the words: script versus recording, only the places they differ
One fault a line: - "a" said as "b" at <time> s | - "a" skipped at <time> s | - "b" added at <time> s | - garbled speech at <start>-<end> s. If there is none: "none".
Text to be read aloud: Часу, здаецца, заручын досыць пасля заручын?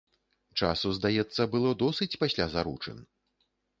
- "заручын" said as "было" at 1.6 s